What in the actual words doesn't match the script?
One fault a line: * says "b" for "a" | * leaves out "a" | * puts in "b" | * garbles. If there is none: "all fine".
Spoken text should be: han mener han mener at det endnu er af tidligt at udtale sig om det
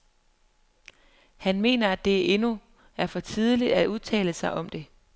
* leaves out "han mener"
* says "for" for "af"